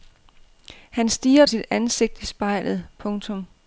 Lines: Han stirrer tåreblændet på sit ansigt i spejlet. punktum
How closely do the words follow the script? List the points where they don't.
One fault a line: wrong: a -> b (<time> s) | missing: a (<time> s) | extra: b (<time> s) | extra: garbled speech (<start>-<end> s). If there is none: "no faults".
missing: tåreblændet på (1.4 s)